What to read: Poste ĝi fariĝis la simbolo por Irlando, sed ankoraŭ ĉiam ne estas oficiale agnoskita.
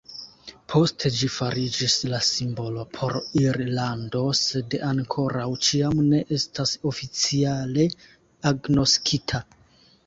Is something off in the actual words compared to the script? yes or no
no